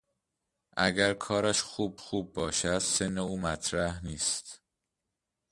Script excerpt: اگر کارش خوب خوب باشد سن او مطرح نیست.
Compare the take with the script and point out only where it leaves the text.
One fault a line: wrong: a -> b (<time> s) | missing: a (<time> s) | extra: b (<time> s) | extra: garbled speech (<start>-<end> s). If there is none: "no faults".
no faults